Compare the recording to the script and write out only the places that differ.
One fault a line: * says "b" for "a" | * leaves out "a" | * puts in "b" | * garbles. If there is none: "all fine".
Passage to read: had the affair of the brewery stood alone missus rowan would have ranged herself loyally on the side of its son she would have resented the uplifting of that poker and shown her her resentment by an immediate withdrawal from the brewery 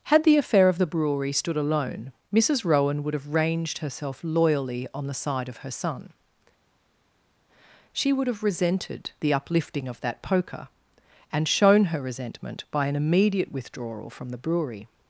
* says "her" for "its"
* leaves out "her"